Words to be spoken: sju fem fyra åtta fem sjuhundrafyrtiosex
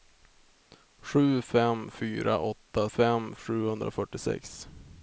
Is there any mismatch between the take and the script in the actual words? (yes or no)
no